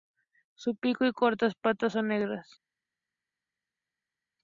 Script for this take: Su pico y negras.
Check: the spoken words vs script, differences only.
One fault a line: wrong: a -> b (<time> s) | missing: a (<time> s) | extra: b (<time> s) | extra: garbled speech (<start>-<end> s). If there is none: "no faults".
extra: cortas patas son (1.1 s)